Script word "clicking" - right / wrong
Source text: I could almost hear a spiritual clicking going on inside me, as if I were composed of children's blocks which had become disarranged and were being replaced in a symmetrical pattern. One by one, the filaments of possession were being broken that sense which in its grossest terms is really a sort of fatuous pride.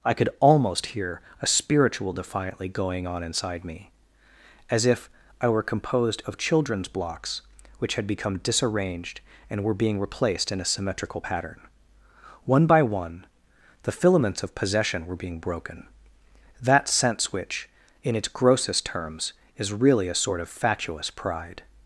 wrong